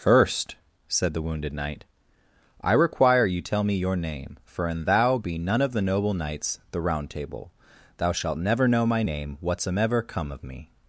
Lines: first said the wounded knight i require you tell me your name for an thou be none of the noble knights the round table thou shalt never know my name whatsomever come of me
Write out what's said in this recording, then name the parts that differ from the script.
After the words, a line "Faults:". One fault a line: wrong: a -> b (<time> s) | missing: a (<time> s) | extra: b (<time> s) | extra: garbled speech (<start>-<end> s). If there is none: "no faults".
first said the wounded knight i require you tell me your name for an thou be none of the noble knights the round table thou shalt never know my name whatsomever come of me
Faults:
no faults